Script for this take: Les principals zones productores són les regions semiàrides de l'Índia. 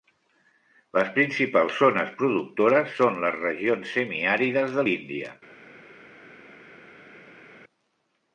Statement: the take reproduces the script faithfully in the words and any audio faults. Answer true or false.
true